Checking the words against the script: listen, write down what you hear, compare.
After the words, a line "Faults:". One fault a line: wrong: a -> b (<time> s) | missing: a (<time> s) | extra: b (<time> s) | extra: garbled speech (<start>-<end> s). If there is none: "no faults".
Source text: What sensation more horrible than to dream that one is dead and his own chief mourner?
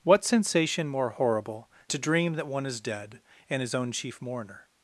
What sensation more horrible to dream that one is dead and his own chief mourner?
Faults:
missing: than (1.7 s)